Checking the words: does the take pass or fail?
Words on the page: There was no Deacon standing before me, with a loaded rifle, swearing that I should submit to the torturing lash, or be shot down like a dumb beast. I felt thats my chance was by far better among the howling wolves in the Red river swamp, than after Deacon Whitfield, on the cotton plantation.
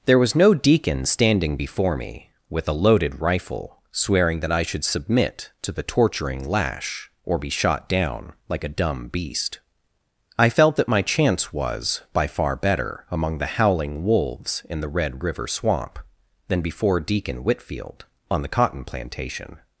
fail